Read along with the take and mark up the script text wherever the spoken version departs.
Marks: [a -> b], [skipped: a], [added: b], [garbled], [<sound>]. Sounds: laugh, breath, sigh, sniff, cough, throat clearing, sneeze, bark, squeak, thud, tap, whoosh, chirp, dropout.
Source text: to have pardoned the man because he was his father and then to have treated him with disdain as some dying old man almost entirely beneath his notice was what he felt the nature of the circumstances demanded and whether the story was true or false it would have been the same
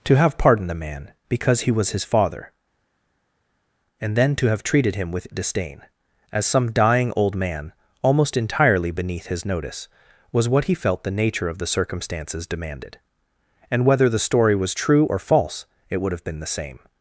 to have pardoned the man because he was his father and then to have treated him with disdain as some dying old man almost entirely beneath his notice was what he felt the nature of the circumstances demanded and whether the story was true or false it would have been the same